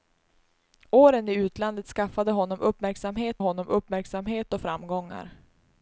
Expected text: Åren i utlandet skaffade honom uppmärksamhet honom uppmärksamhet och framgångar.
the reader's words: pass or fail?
pass